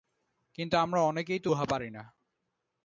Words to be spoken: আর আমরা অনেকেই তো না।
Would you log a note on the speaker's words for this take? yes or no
yes